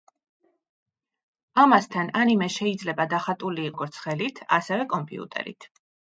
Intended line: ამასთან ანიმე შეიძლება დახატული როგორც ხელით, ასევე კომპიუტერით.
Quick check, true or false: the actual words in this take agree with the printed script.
true